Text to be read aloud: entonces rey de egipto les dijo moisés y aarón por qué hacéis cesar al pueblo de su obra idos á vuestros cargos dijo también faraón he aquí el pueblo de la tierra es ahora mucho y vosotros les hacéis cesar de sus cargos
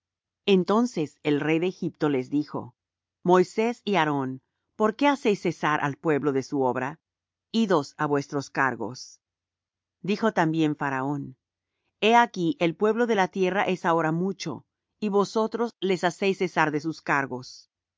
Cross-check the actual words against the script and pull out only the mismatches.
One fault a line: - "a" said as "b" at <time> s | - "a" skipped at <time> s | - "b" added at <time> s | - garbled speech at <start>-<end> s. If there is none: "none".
- "el" added at 1.2 s